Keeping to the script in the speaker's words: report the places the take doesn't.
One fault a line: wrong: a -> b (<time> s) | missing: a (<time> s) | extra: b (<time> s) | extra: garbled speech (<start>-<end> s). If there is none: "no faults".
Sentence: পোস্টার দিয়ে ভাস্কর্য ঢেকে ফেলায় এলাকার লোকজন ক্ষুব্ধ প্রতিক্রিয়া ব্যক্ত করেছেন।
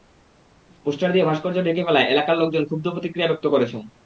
no faults